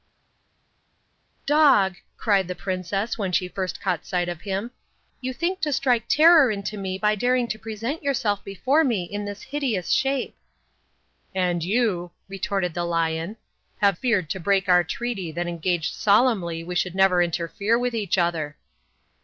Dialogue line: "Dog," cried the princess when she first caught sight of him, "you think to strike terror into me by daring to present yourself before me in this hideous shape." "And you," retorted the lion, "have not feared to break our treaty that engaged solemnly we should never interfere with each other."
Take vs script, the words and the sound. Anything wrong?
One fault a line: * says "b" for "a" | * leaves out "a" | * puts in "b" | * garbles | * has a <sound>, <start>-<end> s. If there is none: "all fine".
* leaves out "not"